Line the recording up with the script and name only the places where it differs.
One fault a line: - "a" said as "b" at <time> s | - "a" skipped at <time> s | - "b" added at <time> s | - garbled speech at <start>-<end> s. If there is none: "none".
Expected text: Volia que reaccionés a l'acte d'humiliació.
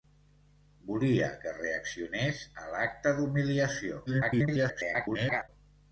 - garbled speech at 4.1-5.5 s